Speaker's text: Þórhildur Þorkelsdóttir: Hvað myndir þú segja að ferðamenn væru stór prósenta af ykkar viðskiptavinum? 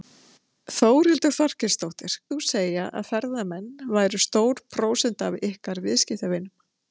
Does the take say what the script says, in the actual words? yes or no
no